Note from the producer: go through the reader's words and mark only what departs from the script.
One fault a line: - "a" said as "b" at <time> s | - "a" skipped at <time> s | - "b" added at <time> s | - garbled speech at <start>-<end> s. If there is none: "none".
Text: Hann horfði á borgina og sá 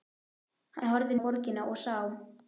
none